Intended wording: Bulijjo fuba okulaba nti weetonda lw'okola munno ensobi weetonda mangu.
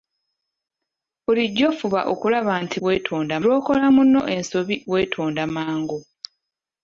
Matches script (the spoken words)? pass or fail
pass